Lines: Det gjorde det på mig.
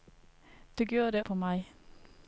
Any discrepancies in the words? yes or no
no